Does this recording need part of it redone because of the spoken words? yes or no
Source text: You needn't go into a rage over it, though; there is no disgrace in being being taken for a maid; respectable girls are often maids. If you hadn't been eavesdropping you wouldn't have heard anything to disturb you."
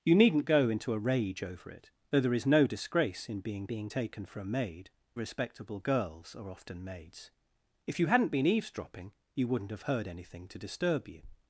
no